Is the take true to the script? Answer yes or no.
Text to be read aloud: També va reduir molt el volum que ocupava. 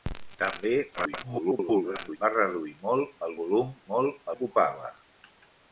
no